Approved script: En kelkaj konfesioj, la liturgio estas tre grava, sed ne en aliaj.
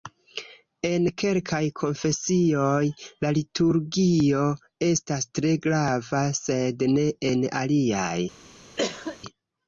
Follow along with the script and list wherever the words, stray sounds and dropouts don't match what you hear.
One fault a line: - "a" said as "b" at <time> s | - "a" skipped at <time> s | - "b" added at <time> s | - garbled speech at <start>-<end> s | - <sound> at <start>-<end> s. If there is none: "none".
- cough at 8.8-9.2 s